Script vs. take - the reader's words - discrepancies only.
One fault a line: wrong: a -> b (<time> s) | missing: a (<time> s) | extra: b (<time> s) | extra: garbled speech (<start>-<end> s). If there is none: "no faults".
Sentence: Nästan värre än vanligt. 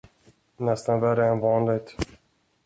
no faults